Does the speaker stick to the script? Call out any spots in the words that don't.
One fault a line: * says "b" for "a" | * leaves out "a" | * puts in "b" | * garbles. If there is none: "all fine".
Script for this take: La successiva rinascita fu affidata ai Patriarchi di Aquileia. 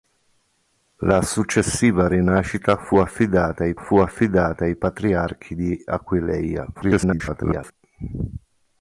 * puts in "fu affidata ai"
* garbles